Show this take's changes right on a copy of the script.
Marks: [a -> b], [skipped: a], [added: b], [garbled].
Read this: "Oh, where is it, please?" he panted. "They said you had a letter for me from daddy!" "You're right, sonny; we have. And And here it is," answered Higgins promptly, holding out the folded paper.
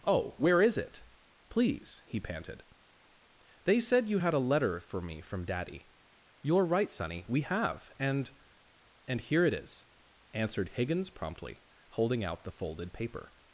"Oh, where is it, please?" he panted. "They said you had a letter for me from daddy!" "You're right, sonny; we have. And And here it is," answered Higgins promptly, holding out the folded paper.